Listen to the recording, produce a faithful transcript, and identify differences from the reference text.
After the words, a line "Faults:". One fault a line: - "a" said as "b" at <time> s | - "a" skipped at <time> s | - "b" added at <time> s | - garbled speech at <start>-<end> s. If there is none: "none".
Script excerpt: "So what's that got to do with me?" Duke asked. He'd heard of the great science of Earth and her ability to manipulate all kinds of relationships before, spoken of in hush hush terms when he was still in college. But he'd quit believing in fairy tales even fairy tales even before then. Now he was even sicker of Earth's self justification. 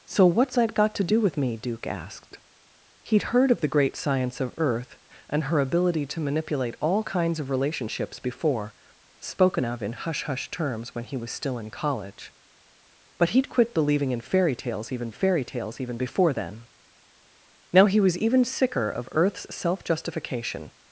"So what's that got to do with me?" Duke asked. He'd heard of the great science of Earth and her ability to manipulate all kinds of relationships before, spoken of in hush hush terms when he was still in college. But he'd quit believing in fairy tales even fairy tales even before then. Now he was even sicker of Earth's self justification.
Faults:
none